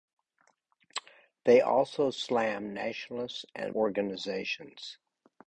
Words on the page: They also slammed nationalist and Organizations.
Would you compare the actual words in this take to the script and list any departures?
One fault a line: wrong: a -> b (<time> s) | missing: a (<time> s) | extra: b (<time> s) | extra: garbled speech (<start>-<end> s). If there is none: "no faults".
no faults